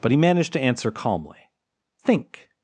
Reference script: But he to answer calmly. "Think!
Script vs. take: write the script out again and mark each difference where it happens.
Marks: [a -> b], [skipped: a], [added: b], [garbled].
But he [added: managed] to answer calmly. "Think!